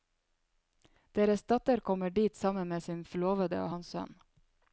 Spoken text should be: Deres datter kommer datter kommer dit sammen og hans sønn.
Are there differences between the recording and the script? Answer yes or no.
yes